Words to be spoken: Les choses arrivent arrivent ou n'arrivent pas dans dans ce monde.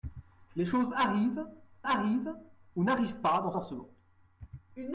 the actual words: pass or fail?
pass